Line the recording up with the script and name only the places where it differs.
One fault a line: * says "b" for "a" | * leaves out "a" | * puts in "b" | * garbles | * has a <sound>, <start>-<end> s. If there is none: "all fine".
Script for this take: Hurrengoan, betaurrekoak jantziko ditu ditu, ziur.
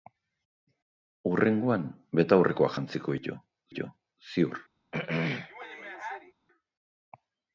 * has a throat clearing, 4.9-6.3 s